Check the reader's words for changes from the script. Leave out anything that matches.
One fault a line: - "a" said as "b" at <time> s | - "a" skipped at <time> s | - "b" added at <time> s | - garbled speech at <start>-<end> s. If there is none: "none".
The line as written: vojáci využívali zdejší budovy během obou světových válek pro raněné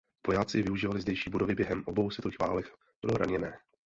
none